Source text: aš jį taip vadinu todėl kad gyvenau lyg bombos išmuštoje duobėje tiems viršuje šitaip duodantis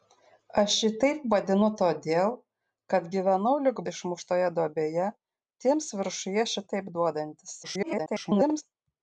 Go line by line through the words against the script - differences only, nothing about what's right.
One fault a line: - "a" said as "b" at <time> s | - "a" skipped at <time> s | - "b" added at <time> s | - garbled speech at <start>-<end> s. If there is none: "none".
- "bombos" skipped at 3.8 s
- garbled speech at 7.6-8.6 s